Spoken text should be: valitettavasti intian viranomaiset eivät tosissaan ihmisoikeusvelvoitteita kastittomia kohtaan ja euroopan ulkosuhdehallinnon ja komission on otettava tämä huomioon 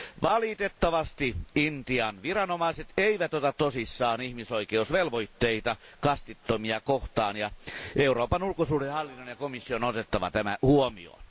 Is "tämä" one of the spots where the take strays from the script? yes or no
no